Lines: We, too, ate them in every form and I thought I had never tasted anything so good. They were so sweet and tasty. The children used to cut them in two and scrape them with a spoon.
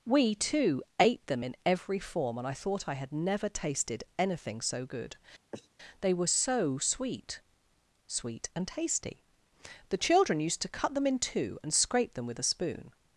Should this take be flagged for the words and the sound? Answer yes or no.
yes